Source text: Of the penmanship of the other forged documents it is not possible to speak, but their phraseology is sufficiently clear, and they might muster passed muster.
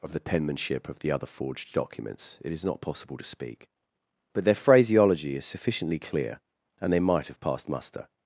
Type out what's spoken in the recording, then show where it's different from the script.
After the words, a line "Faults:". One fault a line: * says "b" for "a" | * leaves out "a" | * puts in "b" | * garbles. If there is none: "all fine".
Of the penmanship of the other forged documents it is not possible to speak, but their phraseology is sufficiently clear, and they might have passed muster.
Faults:
* says "have" for "muster"